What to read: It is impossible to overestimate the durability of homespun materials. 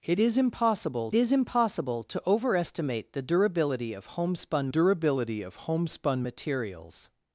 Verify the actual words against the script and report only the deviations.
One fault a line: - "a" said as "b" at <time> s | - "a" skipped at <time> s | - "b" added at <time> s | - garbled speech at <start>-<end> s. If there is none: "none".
- "is impossible" added at 1.1 s
- "durability of homespun" added at 4.7 s